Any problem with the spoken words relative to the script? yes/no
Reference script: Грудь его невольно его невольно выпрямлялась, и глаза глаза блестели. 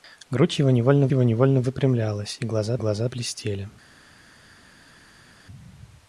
no